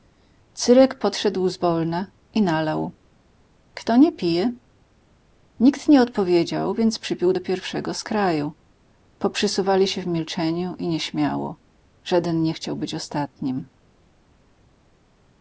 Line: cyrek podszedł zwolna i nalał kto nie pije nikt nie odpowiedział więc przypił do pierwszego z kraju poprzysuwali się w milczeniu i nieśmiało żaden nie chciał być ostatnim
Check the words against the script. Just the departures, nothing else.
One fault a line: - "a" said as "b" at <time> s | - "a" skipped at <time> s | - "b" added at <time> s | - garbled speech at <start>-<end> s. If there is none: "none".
none